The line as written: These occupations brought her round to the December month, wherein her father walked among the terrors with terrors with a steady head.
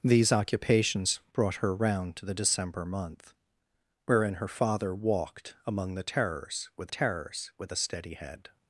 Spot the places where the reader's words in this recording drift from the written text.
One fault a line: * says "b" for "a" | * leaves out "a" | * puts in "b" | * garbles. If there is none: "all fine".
all fine